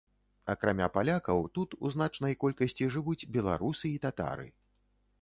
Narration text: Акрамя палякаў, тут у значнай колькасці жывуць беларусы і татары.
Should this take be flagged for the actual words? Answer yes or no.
no